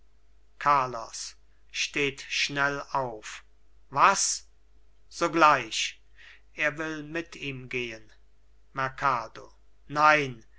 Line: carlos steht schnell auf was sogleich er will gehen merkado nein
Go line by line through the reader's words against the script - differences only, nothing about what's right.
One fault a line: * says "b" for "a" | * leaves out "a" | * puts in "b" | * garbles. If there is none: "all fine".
* puts in "mit ihm"